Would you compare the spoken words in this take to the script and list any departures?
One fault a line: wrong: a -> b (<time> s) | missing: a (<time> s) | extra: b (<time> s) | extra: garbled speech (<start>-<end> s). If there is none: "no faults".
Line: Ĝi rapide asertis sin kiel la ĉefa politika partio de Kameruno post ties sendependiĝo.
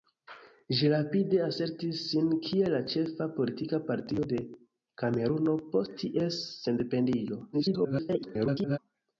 extra: garbled speech (7.5-8.8 s)